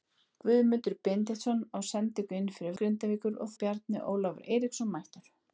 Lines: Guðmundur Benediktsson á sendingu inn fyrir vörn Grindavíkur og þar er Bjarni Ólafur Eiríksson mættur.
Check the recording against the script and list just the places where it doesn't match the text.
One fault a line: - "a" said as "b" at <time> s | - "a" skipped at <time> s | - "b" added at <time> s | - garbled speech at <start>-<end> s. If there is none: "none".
- "vörn" skipped at 2.8 s
- "þar" skipped at 3.5 s